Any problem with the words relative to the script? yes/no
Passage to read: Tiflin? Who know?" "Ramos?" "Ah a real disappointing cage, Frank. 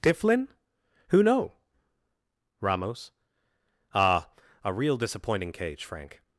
no